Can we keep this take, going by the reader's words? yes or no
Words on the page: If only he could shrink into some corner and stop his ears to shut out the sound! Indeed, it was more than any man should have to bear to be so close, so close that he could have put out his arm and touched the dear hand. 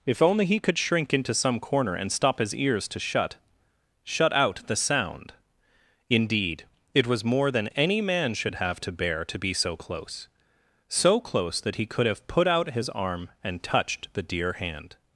no